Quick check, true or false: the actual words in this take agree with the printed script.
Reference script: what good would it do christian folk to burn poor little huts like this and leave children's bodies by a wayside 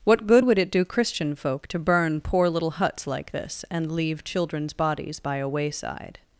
true